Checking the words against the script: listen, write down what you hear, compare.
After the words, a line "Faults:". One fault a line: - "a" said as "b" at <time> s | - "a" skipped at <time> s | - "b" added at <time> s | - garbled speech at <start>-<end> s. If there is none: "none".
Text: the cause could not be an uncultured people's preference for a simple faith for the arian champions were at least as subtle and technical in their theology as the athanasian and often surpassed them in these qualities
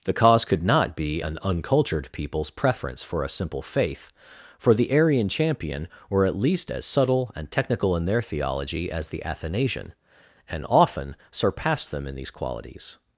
the cause could not be an uncultured people's preference for a simple faith for the arian champion were at least as subtle and technical in their theology as the athanasian and often surpassed them in these qualities
Faults:
- "champions" said as "champion" at 5.3 s